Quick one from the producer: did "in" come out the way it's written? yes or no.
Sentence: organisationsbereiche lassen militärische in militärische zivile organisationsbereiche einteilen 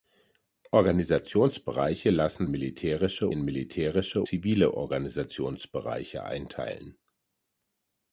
yes